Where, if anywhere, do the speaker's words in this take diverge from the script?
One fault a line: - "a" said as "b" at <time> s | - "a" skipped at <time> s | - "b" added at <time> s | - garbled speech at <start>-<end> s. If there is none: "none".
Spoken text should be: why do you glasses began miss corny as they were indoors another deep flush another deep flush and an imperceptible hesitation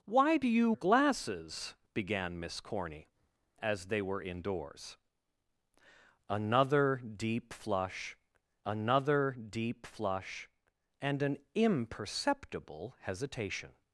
none